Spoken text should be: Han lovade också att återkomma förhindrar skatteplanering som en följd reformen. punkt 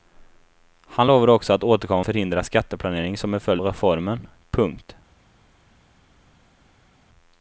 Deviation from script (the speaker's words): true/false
false